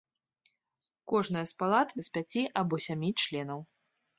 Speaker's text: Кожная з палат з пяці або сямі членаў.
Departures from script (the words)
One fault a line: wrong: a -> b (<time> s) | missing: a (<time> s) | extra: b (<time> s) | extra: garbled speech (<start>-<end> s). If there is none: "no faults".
no faults